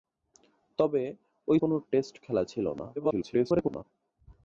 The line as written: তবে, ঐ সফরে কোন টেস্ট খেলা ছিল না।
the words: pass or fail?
fail